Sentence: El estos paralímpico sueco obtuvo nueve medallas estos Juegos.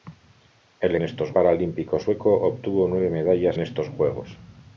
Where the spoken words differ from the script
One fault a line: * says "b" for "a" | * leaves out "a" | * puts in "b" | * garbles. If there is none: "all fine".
all fine